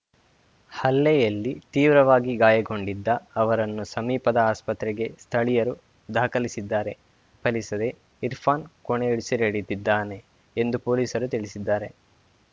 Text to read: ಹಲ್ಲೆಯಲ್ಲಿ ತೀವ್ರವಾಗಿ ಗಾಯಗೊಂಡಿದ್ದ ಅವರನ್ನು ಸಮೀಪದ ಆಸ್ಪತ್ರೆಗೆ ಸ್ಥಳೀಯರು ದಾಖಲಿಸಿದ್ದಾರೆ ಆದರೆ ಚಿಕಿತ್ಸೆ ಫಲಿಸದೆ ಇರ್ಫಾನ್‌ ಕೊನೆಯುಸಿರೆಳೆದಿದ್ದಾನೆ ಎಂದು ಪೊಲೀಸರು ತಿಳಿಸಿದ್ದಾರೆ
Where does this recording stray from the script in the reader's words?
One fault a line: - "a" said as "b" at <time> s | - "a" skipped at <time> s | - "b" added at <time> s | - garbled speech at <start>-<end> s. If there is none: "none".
- "ಆದರೆ ಚಿಕಿತ್ಸೆ" skipped at 6.9 s